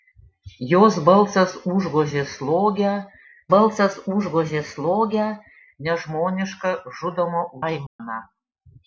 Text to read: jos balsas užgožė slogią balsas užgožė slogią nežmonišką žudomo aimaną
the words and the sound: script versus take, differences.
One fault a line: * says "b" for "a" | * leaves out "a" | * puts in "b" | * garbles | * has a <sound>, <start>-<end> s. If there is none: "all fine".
* has a dropout, 7.9-8.0 s